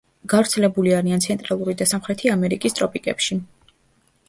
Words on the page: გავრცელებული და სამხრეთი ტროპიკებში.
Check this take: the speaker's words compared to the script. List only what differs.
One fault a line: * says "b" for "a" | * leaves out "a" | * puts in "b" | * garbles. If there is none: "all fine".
* puts in "არიან ცენტრალური"
* puts in "ამერიკის"